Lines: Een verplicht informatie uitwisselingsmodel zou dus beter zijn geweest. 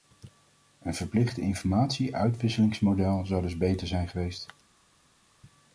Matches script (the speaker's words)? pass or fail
pass